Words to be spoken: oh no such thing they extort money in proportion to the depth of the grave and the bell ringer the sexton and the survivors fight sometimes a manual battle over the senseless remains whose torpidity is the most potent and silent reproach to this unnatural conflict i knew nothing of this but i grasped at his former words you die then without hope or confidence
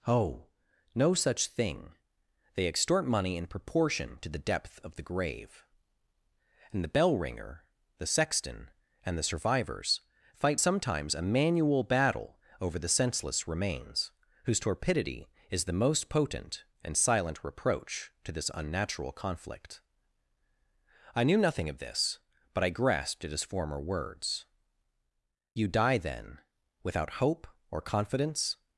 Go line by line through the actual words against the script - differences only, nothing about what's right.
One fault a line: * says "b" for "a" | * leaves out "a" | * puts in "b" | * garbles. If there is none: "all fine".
all fine